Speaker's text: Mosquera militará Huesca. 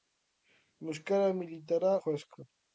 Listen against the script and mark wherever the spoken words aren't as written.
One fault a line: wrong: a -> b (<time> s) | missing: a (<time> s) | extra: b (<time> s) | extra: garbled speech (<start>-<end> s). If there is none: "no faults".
no faults